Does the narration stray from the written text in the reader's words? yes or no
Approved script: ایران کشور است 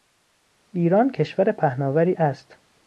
yes